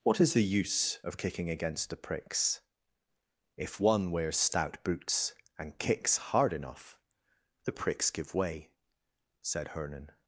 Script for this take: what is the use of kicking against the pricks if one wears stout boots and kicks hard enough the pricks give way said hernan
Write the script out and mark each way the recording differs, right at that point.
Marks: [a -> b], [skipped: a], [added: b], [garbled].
what is the use of kicking against the pricks if one wears stout boots and kicks hard enough the pricks give way said hernan